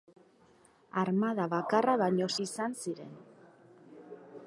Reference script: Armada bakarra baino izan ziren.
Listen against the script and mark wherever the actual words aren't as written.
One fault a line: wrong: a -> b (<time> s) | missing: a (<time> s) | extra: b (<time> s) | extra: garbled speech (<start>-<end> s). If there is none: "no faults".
no faults